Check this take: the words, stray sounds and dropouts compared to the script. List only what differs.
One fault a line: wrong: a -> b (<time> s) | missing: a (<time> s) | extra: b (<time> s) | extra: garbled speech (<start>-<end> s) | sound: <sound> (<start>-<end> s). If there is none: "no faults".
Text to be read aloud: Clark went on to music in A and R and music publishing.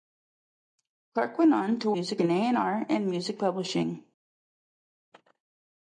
no faults